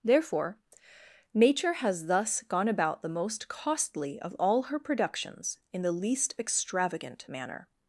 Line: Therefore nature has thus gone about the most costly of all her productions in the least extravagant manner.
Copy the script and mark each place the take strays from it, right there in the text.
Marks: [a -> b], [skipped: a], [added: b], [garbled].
Therefore nature has thus gone about the most costly of all her productions in the least extravagant manner.